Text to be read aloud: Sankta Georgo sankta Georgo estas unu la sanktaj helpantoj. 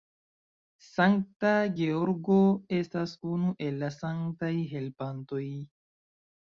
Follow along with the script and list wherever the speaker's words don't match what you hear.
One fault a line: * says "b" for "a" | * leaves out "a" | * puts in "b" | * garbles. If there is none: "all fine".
* leaves out "sankta Georgo"
* puts in "el"